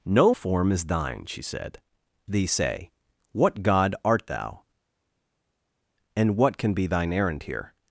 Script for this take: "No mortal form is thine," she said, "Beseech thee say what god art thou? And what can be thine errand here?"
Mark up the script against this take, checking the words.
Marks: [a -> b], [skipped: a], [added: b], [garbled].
"No [skipped: mortal] form is thine," she said, [skipped: "Beseech] thee say what god art thou? And what can be thine errand here?"